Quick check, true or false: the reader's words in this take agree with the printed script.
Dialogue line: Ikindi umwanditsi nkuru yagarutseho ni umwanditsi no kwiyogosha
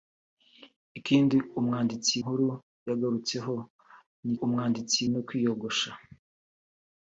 true